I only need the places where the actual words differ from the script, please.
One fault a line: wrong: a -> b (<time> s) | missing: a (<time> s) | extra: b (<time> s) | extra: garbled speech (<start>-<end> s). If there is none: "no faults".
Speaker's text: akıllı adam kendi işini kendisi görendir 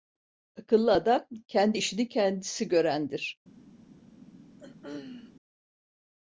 no faults